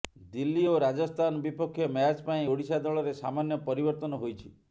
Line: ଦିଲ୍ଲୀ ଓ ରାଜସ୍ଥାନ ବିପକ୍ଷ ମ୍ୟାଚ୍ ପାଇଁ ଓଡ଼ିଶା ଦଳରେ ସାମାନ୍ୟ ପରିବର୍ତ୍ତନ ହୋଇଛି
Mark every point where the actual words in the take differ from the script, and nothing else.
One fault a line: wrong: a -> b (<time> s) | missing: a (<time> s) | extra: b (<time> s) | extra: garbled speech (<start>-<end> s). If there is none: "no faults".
no faults